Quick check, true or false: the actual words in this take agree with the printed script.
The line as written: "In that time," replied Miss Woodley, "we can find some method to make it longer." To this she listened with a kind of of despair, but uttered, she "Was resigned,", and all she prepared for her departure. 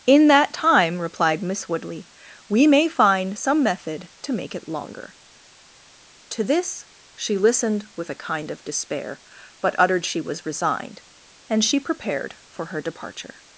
false